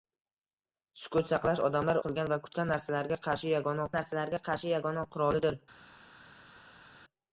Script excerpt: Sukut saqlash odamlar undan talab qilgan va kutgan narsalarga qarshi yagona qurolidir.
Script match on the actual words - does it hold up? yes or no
no